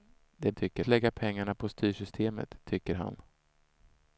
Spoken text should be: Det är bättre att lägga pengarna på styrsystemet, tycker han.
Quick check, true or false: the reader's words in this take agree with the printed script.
false